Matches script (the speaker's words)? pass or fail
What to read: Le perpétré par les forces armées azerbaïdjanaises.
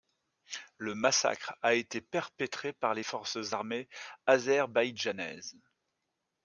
fail